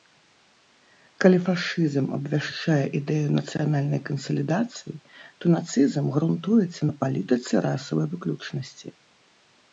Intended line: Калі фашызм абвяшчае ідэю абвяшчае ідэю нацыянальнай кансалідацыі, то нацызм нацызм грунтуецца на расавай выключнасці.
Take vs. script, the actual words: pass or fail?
fail